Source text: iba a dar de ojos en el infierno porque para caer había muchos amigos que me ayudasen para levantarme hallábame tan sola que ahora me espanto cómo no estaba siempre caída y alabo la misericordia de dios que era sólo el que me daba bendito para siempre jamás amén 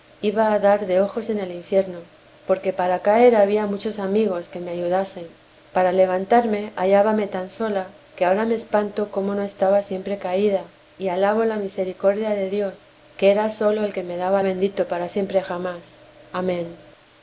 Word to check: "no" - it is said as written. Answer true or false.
true